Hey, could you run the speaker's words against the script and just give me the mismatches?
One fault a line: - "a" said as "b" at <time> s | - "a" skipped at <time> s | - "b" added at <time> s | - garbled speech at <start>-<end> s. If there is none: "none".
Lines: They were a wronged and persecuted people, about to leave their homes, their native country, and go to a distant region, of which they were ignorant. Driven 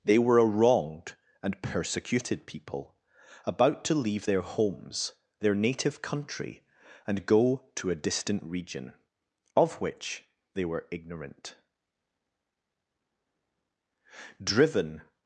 none